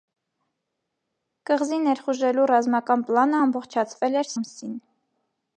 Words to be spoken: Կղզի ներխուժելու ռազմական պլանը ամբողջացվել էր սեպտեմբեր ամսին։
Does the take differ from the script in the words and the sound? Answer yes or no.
yes